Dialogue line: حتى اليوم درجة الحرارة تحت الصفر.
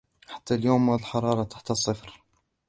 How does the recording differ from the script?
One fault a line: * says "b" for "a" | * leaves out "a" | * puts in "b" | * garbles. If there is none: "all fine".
* leaves out "درجة"